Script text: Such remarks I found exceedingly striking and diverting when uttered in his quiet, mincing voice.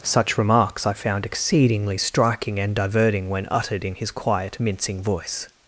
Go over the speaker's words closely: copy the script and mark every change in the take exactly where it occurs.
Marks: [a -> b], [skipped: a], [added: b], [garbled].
Such remarks I found exceedingly striking and diverting when uttered in his quiet, mincing voice.